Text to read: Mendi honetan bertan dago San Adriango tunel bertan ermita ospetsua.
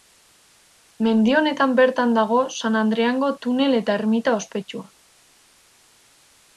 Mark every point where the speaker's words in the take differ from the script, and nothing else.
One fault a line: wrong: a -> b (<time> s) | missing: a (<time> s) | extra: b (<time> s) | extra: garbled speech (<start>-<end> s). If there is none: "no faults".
wrong: bertan -> eta (3.8 s)